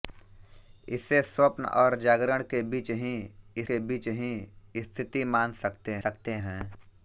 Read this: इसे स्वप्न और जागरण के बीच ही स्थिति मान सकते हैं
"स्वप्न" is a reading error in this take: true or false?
false